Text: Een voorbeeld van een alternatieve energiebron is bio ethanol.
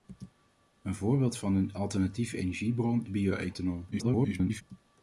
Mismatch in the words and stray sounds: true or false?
true